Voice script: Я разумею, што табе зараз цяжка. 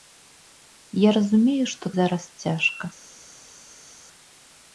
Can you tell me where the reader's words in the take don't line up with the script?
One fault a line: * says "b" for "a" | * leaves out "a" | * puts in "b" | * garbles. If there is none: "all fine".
* leaves out "табе"